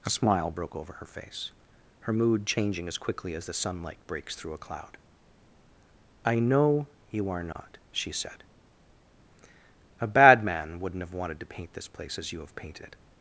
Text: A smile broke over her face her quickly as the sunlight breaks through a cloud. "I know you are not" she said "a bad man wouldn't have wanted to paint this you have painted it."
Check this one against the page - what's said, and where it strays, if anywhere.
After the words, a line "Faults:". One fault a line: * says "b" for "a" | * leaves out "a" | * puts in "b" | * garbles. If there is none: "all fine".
A smile broke over her face her mood changing as quickly as the sunlight breaks through a cloud. "I know you are not" she said "a bad man wouldn't have wanted to paint this place as you have painted it."
Faults:
* puts in "mood changing as"
* puts in "place as"